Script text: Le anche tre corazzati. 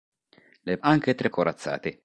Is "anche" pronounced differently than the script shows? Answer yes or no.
no